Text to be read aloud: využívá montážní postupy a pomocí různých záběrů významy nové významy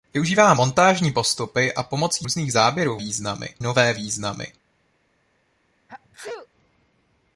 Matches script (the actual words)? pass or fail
pass